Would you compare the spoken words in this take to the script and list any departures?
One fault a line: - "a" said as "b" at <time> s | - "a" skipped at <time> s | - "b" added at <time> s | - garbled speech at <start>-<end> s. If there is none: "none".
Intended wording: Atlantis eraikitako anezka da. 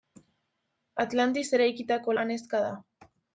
none